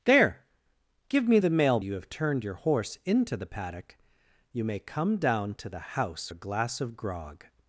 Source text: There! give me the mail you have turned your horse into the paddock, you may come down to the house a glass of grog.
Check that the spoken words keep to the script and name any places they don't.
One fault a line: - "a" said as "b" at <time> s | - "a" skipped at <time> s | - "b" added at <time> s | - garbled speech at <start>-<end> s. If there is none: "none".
none